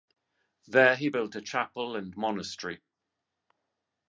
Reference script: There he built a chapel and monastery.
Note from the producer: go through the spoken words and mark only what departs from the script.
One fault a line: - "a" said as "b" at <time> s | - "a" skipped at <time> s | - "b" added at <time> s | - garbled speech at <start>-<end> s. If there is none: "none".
none